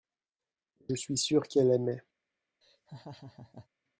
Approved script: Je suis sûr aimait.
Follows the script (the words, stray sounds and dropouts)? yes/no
no